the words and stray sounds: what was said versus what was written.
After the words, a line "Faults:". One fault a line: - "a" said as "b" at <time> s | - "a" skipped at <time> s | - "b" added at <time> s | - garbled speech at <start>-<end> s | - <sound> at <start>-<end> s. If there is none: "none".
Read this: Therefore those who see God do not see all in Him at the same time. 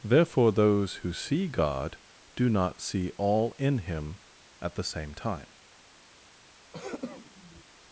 Therefore those who see God do not see all in Him at the same time.
Faults:
- throat clearing at 6.7-7.7 s